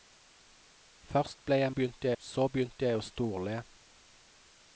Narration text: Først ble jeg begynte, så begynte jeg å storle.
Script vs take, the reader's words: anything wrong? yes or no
no